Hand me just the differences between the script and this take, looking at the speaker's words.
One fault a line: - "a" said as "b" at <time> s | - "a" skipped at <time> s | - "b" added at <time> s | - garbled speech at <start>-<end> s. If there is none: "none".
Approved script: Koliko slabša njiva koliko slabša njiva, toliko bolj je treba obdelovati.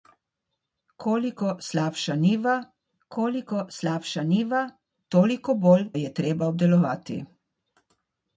none